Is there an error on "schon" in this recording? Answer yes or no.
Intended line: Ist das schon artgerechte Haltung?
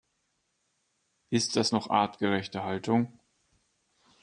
yes